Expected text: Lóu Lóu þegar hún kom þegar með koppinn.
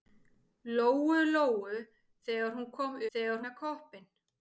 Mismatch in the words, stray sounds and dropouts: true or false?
false